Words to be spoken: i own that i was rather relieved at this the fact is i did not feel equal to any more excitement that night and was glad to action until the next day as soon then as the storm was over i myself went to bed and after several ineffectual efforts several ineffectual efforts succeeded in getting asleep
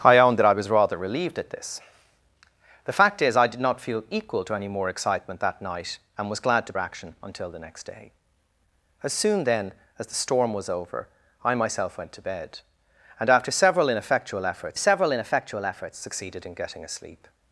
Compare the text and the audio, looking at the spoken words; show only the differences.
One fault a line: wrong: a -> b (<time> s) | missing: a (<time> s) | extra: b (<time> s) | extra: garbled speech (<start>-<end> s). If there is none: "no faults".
no faults